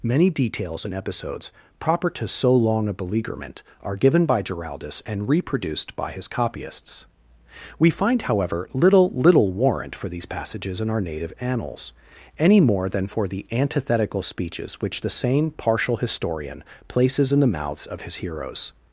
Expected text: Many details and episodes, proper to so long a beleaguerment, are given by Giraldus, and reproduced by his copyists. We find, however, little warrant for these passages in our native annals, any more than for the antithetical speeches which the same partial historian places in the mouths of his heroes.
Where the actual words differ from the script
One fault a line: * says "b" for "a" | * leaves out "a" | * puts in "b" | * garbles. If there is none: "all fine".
* puts in "little"